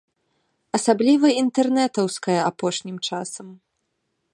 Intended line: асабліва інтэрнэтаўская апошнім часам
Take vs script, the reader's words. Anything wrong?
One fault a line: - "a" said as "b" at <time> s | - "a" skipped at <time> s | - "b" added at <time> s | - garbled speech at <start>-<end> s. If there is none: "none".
none